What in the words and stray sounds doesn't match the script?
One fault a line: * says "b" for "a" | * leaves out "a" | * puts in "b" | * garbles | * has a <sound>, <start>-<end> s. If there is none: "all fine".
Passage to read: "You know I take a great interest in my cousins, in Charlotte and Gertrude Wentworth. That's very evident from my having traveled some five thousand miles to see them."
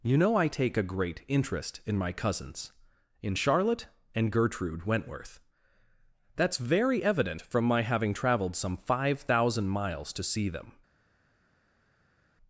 all fine